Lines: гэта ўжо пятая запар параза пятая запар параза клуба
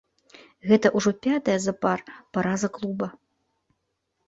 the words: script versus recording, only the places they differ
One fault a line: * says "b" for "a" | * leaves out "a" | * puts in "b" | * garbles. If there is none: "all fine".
* leaves out "пятая запар параза"